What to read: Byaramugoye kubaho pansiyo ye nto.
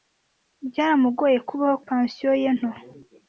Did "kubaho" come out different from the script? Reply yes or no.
no